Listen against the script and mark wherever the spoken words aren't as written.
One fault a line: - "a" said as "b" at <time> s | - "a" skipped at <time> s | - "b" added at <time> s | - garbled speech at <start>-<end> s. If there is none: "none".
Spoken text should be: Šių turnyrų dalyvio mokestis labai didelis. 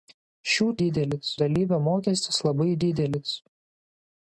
- "turnyrų" said as "didelis" at 0.8 s